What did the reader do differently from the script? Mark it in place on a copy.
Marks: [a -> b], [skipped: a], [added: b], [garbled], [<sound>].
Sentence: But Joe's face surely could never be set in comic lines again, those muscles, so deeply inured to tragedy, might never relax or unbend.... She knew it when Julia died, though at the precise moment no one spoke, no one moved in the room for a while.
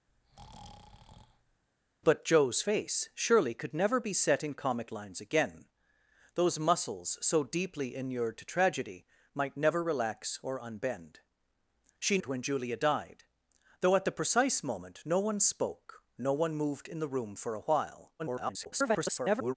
[breath] But Joe's face surely could never be set in comic lines again, those muscles, so deeply inured to tragedy, might never relax or unbend.... She [skipped: knew] it when Julia died, though at the precise moment no one spoke, no one moved in the room for a while. [garbled]